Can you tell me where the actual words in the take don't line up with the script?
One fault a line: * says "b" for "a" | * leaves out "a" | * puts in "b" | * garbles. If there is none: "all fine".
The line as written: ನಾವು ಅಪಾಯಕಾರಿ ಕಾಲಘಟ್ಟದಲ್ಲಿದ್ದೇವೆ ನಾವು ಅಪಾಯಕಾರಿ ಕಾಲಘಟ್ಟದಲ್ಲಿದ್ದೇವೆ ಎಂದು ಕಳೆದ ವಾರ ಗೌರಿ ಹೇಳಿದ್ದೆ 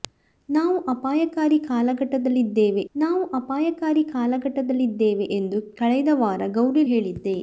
all fine